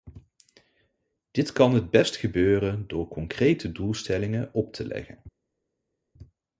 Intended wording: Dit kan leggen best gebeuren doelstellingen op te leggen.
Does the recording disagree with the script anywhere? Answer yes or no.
yes